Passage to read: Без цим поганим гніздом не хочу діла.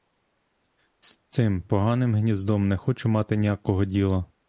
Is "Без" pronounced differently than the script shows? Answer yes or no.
yes